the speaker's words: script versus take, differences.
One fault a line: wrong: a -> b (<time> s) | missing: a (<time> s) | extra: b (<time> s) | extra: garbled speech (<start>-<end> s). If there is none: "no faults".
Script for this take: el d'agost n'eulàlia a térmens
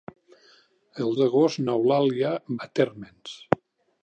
no faults